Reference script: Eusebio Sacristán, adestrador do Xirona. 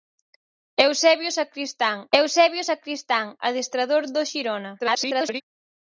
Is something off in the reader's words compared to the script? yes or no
yes